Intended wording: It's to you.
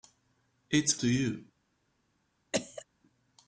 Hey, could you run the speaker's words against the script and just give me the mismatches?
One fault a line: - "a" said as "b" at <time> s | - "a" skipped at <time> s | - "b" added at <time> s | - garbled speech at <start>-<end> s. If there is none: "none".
none